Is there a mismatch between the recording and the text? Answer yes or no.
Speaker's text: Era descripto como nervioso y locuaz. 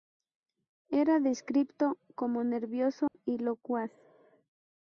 no